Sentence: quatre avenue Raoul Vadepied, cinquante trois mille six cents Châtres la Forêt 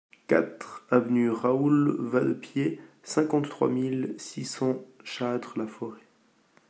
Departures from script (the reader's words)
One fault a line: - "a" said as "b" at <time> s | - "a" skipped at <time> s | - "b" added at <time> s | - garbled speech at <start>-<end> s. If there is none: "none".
none